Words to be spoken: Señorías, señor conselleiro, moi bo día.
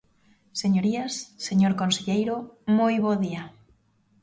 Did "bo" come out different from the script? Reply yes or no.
no